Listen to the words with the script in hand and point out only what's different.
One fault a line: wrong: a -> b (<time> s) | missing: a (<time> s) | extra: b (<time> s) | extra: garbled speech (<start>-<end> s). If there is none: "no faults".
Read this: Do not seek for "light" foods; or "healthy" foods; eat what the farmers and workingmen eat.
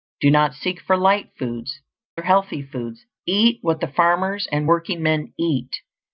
no faults